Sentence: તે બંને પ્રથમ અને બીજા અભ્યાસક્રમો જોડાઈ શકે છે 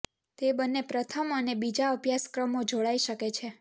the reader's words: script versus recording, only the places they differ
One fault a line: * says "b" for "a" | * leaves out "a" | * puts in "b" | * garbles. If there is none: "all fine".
all fine